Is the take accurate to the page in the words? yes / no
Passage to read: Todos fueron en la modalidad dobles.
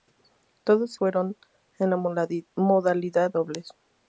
yes